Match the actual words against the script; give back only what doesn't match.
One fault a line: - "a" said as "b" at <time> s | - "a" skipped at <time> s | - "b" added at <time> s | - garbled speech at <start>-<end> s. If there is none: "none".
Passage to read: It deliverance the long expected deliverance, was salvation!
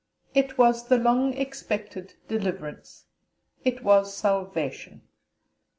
- "deliverance" said as "was" at 0.6 s
- "it" added at 3.6 s